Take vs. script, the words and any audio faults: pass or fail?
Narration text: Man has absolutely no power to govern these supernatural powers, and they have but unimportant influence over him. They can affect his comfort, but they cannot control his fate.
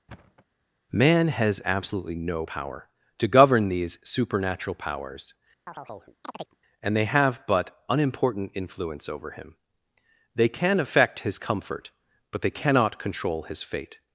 fail